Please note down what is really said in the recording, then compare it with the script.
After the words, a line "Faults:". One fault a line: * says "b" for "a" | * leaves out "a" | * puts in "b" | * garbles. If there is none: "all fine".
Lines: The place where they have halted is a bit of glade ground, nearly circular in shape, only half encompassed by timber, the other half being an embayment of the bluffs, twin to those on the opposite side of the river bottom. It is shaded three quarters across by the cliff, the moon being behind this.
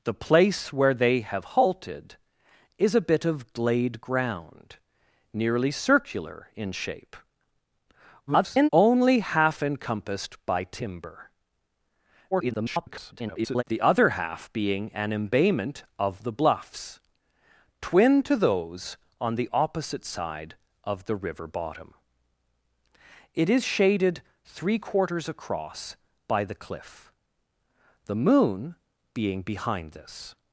The place where they have halted is a bit of glade ground, nearly circular in shape, [garbled] only half encompassed by timber, [garbled] the other half being an embayment of the bluffs, twin to those on the opposite side of the river bottom. It is shaded three quarters across by the cliff, the moon being behind this.
Faults:
* garbles
* garbles